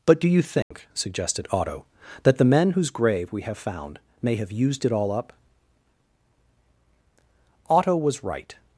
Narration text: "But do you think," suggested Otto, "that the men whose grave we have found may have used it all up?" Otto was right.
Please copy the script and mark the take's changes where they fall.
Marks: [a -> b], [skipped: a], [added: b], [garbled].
"But do you think," suggested Otto, "that the men whose grave we have found may have used it all up?" Otto was right.